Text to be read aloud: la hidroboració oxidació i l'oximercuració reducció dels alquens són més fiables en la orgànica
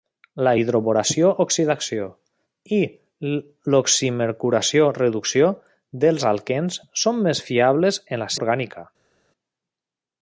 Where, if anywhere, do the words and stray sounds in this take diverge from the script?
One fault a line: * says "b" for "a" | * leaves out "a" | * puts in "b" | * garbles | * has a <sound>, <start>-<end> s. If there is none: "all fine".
all fine